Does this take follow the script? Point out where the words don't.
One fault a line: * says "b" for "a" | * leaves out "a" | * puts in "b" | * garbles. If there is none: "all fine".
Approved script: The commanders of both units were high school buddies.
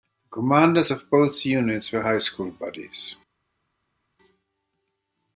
all fine